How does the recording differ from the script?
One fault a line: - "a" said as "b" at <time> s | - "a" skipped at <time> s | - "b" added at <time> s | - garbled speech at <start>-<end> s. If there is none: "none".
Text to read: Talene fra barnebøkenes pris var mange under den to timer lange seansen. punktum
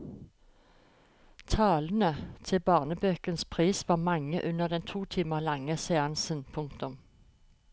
- "fra" said as "til" at 2.4 s